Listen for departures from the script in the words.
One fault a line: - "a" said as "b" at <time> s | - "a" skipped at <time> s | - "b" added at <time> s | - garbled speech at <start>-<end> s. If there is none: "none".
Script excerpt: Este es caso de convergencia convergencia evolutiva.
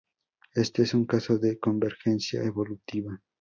- "un" added at 0.9 s
- "convergencia" skipped at 2.4 s